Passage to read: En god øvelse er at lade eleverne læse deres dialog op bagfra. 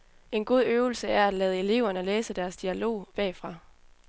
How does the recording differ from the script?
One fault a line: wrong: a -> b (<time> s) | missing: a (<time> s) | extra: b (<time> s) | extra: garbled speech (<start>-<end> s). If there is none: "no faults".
missing: op (3.1 s)